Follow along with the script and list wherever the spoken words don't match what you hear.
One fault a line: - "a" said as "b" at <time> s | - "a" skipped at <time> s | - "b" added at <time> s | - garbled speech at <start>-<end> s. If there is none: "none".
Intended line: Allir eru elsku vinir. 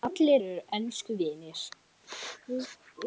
none